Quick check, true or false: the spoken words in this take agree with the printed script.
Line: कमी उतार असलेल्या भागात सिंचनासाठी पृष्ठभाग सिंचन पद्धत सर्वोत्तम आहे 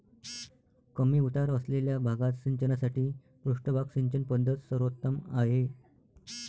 true